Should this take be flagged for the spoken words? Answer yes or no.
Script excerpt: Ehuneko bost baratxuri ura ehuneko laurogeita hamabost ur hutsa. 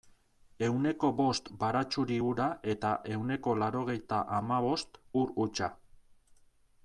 yes